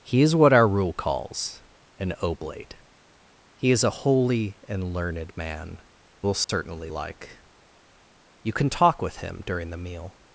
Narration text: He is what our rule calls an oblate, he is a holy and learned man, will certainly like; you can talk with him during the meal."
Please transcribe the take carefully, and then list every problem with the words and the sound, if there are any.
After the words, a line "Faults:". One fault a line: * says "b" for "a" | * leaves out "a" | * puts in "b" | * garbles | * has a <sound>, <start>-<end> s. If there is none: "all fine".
He is what our rule calls an oblate, he is a holy and learned man, will certainly like; you can talk with him during the meal."
Faults:
* has a dropout, 6.4-6.5 s